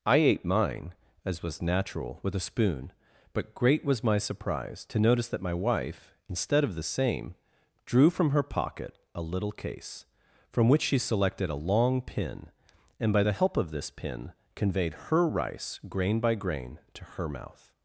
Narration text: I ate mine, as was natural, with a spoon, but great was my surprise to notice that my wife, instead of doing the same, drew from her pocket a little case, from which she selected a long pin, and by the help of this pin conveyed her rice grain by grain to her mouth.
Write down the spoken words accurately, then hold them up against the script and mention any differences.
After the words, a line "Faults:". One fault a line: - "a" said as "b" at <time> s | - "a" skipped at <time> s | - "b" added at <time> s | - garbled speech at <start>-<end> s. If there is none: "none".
I ate mine, as was natural, with a spoon, but great was my surprise to notice that my wife, instead of the same, drew from her pocket a little case, from which she selected a long pin, and by the help of this pin conveyed her rice grain by grain to her mouth.
Faults:
- "doing" skipped at 6.8 s